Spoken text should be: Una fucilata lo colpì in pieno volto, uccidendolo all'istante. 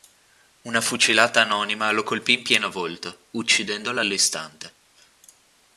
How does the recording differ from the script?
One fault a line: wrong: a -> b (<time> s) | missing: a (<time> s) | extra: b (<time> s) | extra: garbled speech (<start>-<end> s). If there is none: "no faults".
extra: anonima (1.4 s)